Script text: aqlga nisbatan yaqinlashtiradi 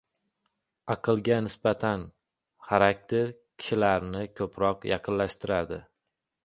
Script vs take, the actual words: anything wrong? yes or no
yes